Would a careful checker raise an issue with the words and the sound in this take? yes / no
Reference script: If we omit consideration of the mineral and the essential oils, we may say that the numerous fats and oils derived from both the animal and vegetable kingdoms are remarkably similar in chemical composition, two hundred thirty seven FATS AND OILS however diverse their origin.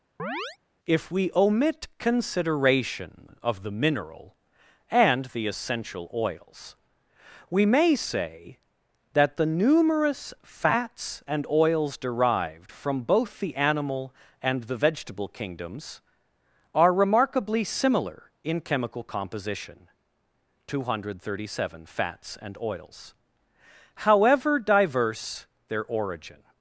yes